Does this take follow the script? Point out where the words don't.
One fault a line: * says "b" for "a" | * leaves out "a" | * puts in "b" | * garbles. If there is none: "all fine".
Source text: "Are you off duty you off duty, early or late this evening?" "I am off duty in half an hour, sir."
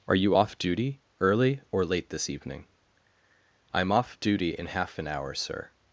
* leaves out "you off duty"